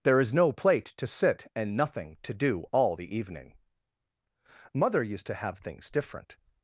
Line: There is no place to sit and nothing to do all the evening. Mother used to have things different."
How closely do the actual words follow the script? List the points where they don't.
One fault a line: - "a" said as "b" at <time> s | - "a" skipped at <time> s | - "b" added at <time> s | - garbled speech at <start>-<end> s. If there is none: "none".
- "place" said as "plate" at 0.5 s